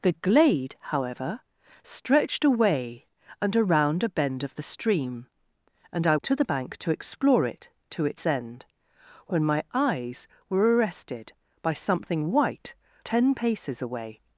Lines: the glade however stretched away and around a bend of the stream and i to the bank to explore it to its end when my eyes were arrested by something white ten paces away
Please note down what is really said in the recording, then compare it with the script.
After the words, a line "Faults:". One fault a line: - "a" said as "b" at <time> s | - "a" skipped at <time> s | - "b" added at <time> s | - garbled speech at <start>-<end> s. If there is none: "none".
the glade however stretched away and around a bend of the stream and i to the bank to explore it to its end when my eyes were arrested by something white ten paces away
Faults:
none